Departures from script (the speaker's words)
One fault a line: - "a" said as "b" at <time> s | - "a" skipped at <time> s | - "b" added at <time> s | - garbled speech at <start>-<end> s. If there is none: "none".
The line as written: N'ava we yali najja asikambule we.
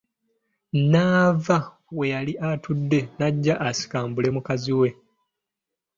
- "atudde" added at 2.5 s
- "mukazi" added at 4.4 s